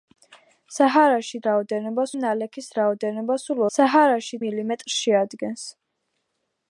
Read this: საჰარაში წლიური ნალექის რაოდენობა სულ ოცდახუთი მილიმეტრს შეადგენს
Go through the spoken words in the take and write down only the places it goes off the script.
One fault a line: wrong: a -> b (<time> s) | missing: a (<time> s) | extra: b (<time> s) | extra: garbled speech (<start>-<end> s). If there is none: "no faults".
wrong: წლიური -> რაოდენობა (1.5 s)
wrong: ოცდახუთი -> საჰარაში (3.8 s)